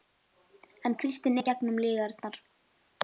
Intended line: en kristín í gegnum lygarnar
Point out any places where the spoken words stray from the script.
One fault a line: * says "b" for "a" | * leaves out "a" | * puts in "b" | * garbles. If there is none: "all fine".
all fine